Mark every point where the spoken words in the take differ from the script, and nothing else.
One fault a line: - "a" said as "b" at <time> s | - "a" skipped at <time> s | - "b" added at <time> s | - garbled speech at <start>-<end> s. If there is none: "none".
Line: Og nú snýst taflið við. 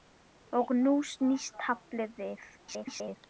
- garbled speech at 2.6-3.2 s